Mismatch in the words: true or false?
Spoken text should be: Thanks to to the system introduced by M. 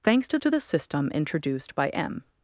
false